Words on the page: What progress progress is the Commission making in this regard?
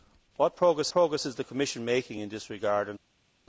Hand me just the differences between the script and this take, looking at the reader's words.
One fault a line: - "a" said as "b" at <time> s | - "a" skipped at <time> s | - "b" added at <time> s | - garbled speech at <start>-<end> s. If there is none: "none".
none